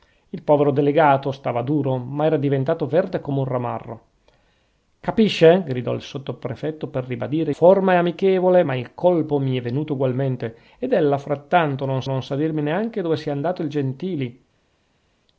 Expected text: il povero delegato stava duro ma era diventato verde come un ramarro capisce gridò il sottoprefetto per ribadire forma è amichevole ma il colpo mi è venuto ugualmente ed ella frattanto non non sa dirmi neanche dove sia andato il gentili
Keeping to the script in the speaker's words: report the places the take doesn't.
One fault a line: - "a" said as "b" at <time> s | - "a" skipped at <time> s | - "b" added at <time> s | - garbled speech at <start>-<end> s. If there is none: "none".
none